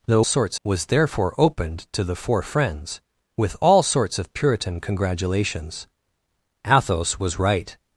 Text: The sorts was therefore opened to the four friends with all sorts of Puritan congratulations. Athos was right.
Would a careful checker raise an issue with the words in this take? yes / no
no